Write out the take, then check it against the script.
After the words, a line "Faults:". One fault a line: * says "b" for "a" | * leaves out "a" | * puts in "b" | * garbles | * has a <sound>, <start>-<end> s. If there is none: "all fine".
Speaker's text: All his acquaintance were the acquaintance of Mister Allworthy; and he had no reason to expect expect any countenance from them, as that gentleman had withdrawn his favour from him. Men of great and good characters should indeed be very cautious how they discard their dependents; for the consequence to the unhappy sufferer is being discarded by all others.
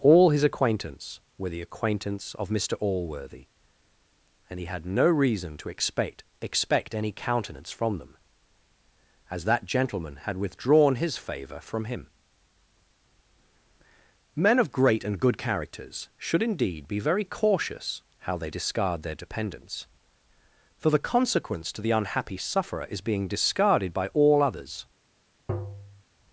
All his acquaintance were the acquaintance of Mister Allworthy; and he had no reason to expect expect any countenance from them, as that gentleman had withdrawn his favour from him. Men of great and good characters should indeed be very cautious how they discard their dependents; for the consequence to the unhappy sufferer is being discarded by all others.
Faults:
* has a tap, 25.5-26.0 s